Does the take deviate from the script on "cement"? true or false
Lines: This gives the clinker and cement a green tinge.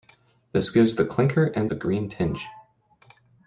true